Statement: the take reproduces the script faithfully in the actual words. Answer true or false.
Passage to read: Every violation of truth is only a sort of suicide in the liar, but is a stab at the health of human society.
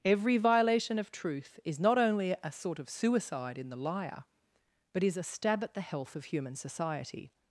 false